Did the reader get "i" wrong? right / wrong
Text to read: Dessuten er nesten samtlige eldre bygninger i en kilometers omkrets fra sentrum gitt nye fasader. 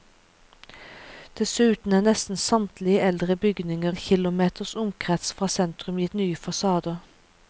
wrong